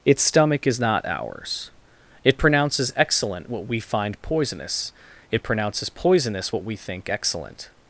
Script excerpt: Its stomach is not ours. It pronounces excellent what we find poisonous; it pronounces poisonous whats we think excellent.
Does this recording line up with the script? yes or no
no